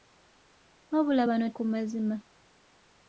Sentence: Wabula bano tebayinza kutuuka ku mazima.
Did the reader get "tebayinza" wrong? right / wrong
wrong